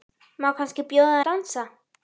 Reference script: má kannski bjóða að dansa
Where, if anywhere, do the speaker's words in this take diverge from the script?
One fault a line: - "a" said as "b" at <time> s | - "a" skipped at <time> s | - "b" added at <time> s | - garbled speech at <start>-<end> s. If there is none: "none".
none